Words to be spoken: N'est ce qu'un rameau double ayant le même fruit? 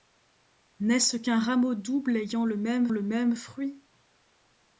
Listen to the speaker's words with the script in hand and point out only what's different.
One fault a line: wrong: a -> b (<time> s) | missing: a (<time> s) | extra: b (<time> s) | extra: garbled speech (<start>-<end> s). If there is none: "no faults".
extra: le même (2.9 s)